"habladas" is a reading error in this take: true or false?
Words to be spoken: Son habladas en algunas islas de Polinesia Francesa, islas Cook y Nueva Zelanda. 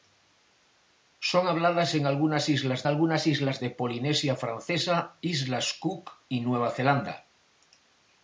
false